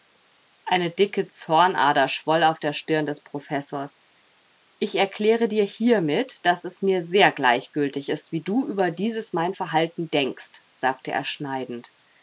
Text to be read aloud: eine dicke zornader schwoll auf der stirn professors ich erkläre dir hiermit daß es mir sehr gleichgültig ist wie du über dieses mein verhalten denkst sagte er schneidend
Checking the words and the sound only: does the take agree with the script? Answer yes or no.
no